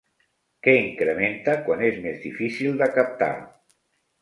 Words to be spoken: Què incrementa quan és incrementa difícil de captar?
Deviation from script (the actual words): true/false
true